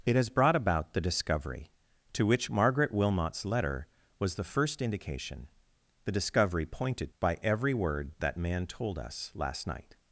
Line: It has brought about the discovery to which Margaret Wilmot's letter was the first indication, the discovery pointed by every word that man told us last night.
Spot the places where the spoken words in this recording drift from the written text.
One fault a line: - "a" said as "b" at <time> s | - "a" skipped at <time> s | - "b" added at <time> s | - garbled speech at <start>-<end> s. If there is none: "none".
none